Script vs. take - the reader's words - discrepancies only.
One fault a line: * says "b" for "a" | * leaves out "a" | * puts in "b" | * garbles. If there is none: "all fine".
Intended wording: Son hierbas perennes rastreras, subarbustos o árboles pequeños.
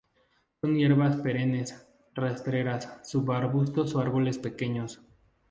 all fine